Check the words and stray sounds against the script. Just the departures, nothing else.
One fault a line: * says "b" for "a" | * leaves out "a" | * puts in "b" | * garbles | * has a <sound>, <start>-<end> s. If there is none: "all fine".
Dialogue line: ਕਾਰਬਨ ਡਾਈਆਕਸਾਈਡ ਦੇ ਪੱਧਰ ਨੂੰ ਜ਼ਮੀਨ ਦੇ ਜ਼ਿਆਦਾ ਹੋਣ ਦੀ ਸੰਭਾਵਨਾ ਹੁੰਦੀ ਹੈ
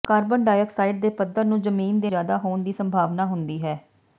all fine